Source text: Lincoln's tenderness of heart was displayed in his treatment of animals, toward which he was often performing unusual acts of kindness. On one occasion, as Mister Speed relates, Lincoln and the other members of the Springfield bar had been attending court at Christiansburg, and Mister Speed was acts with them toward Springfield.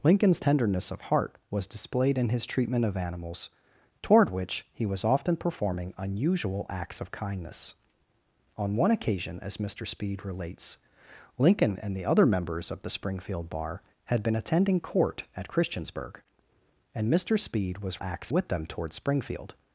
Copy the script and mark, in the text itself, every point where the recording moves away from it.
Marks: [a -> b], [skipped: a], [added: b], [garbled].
Lincoln's tenderness of heart was displayed in his treatment of animals, toward which he was often performing unusual acts of kindness. On one occasion, as Mister Speed relates, Lincoln and the other members of the Springfield bar had been attending court at Christiansburg, and Mister Speed was acts with them toward Springfield.